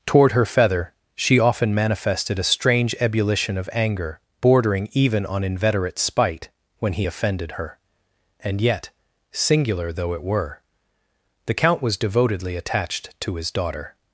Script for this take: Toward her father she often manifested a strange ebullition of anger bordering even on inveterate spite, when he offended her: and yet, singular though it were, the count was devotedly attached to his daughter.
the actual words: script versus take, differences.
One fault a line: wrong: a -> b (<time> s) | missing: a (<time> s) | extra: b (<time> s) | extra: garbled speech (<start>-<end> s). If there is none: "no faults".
wrong: father -> feather (0.5 s)